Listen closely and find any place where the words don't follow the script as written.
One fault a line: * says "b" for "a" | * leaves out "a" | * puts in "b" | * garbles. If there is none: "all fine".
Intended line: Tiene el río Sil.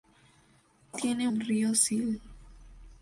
all fine